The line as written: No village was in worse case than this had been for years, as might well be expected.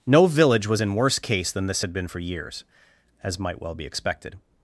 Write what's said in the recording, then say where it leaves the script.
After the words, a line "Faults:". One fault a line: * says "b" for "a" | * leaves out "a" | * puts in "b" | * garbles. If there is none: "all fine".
No village was in worse case than this had been for years, as might well be expected.
Faults:
all fine